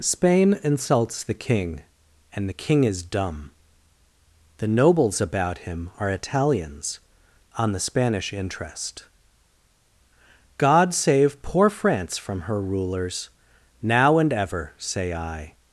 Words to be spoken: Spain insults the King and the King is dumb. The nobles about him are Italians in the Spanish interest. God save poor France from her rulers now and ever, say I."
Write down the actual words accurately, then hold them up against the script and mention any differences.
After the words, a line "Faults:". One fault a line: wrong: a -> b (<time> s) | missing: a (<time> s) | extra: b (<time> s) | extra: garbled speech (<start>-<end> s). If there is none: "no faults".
Spain insults the King and the King is dumb. The nobles about him are Italians on the Spanish interest. God save poor France from her rulers now and ever, say I."
Faults:
wrong: in -> on (7.6 s)